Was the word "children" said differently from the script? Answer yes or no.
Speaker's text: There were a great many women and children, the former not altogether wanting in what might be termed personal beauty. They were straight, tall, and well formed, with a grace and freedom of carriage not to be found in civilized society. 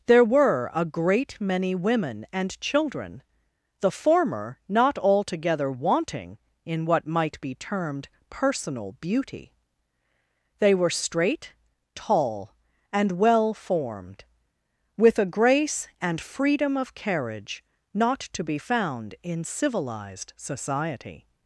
no